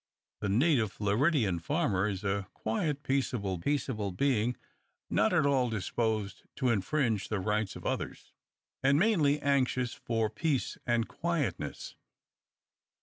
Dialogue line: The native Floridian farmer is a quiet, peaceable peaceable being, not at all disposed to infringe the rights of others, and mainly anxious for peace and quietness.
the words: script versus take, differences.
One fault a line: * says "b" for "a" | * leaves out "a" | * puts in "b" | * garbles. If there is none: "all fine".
all fine